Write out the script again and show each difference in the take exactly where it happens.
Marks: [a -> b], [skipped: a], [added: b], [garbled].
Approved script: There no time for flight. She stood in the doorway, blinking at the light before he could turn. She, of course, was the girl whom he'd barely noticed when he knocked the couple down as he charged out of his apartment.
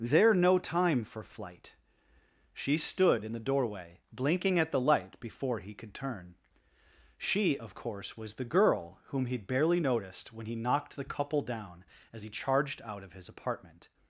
There no time for flight. She stood in the doorway, blinking at the light before he could turn. She, of course, was the girl whom he'd barely noticed when he knocked the couple down as he charged out of his apartment.